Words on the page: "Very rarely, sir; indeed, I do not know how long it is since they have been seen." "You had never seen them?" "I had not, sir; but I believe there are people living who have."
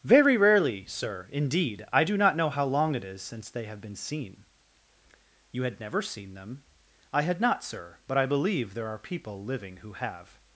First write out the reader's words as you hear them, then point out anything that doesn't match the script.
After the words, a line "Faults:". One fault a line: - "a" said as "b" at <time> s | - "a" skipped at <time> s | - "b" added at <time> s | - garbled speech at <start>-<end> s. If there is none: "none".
"Very rarely, sir; indeed, I do not know how long it is since they have been seen." "You had never seen them?" "I had not, sir; but I believe there are people living who have."
Faults:
none